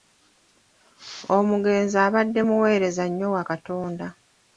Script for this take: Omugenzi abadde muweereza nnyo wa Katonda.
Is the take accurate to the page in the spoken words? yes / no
yes